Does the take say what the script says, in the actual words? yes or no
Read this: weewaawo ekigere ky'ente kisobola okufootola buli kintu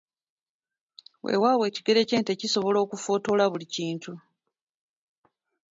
yes